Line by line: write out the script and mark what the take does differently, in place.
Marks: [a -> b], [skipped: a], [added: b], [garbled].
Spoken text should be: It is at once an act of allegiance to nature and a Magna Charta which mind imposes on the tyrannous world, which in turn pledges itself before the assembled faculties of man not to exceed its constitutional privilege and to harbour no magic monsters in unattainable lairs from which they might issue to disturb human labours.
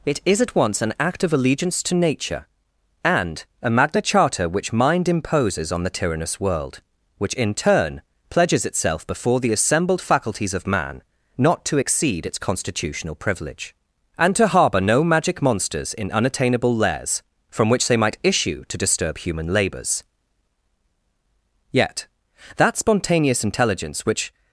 It is at once an act of allegiance to nature and a Magna Charta which mind imposes on the tyrannous world, which in turn pledges itself before the assembled faculties of man not to exceed its constitutional privilege and to harbour no magic monsters in unattainable lairs from which they might issue to disturb human labours. [added: Yet that spontaneous intelligence which]